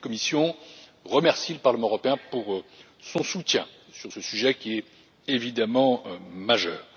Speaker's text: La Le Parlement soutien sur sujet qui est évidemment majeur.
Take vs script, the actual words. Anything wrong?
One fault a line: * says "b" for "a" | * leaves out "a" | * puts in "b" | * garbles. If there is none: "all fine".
* puts in "Commission remercie"
* puts in "européen pour son"
* puts in "ce"